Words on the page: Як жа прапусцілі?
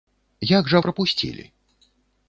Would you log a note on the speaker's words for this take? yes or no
no